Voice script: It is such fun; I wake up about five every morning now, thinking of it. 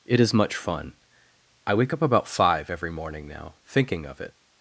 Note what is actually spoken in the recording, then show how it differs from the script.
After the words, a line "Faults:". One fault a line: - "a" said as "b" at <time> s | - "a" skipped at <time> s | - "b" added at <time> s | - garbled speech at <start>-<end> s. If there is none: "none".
It is much fun; I wake up about five every morning now, thinking of it.
Faults:
- "such" said as "much" at 0.3 s